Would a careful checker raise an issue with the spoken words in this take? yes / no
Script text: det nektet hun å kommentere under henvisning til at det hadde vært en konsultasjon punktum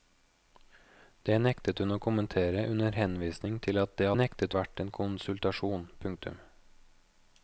yes